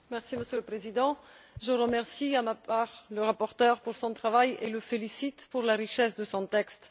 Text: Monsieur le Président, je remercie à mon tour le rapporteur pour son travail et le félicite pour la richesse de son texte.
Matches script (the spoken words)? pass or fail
pass